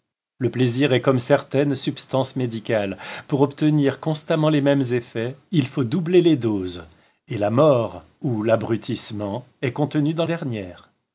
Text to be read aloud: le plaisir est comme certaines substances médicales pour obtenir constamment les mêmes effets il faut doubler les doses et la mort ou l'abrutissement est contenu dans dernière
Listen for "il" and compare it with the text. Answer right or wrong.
right